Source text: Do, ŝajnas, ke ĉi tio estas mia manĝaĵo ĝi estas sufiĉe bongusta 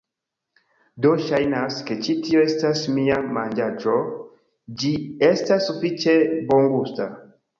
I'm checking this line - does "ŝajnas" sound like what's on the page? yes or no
yes